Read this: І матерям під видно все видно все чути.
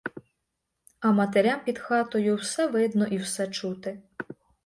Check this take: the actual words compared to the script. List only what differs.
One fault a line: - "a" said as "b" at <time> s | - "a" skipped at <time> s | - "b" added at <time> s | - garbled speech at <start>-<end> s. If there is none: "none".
- "І" said as "А" at 1.0 s
- "видно" said as "хатою" at 1.8 s
- "і" added at 3.1 s